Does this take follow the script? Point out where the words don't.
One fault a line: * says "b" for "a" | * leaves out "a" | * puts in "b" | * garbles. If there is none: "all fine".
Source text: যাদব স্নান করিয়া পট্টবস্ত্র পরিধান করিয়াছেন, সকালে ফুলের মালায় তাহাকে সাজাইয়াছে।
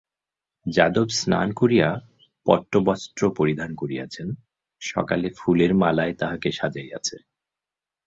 all fine